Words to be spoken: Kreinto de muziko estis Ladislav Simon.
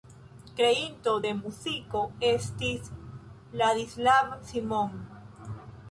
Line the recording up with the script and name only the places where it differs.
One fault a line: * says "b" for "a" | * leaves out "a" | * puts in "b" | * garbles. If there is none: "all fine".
all fine